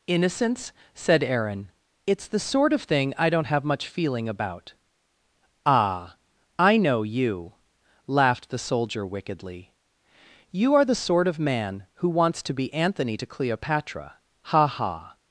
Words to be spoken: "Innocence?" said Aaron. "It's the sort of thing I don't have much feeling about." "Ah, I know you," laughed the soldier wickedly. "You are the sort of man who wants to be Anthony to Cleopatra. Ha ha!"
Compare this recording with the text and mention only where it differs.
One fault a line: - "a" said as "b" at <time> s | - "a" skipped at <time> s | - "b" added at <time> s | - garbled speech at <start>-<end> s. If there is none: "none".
none